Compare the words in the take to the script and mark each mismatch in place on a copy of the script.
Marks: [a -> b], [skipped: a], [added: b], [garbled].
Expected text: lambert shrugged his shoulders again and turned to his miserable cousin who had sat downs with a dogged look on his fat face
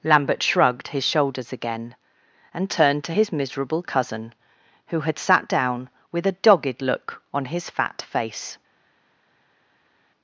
lambert shrugged his shoulders again and turned to his miserable cousin who had sat [downs -> down] with a dogged look on his fat face